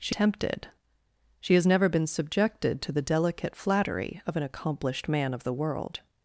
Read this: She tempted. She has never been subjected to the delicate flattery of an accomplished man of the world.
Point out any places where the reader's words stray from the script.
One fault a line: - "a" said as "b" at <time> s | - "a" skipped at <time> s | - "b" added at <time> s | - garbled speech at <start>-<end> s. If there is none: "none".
none